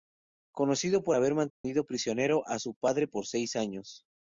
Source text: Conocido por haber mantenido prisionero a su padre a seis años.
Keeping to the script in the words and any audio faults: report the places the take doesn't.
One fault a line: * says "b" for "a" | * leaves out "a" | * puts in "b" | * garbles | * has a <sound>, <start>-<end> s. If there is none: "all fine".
* has a dropout, 1.5-1.6 s
* says "por" for "a"